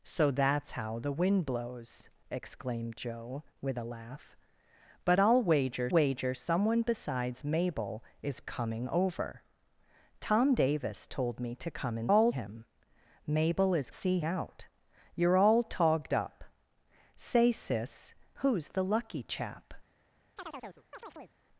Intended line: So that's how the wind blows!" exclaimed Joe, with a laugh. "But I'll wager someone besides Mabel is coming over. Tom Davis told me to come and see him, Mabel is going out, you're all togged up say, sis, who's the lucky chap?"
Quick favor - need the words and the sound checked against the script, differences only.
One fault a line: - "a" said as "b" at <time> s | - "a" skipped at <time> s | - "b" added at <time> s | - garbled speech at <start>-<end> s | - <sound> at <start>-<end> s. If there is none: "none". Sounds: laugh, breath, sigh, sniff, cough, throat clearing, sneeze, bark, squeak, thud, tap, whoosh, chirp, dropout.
- "wager" added at 5.9 s
- "see" said as "all" at 12.1 s
- "going" said as "see" at 13.9 s
- chirp at 20.4-21.4 s